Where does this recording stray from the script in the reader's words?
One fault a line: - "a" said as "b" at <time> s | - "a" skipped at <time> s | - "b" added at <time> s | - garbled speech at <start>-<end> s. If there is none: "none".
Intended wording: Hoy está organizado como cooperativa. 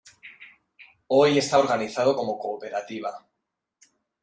none